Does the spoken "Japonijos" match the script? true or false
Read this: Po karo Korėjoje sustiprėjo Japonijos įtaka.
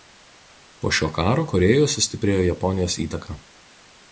true